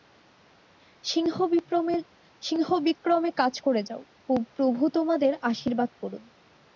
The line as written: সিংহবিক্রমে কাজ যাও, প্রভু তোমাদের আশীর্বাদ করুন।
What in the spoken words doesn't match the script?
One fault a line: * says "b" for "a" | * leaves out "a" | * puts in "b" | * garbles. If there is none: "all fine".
* puts in "করে"